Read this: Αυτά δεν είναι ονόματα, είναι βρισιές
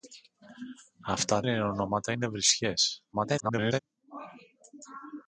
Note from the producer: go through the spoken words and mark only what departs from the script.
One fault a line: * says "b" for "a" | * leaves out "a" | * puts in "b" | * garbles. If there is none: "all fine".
* leaves out "δεν"
* garbles